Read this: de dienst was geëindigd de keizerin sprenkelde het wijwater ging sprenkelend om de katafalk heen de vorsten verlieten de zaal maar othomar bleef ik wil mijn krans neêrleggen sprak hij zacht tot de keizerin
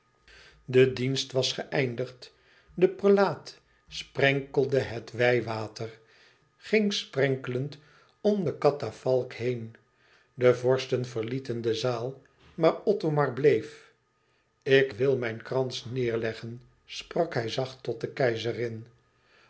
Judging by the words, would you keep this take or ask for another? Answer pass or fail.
fail